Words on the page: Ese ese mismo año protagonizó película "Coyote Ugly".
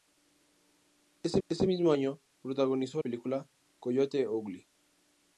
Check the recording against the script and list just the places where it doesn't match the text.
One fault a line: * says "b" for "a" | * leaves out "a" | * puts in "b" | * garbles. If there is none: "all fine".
all fine